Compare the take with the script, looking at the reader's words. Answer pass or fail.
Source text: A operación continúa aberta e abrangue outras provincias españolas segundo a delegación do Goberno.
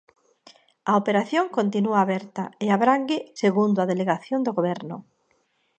fail